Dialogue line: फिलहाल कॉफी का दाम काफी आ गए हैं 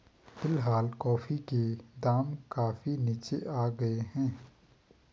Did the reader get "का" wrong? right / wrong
wrong